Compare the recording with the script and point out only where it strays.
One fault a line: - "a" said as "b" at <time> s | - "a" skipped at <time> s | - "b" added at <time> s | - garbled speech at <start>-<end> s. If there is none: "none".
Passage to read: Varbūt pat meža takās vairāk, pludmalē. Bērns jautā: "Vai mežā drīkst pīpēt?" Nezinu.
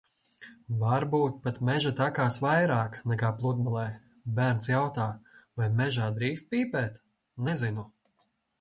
- "nekā" added at 3.1 s